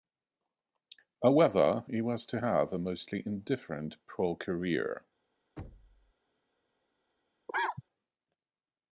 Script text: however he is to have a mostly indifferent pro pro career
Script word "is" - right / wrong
wrong